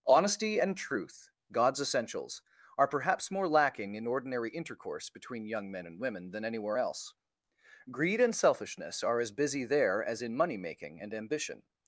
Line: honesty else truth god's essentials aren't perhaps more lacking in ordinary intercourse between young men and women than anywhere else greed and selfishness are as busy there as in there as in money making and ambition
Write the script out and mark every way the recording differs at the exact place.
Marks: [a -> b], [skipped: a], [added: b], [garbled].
honesty [else -> and] truth god's essentials [aren't -> are] perhaps more lacking in ordinary intercourse between young men and women than anywhere else greed and selfishness are as busy there as in [skipped: there as in] money making and ambition